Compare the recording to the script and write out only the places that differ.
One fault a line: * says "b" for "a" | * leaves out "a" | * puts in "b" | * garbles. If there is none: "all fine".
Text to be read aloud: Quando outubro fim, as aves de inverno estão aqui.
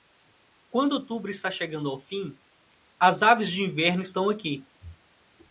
* puts in "está chegando ao"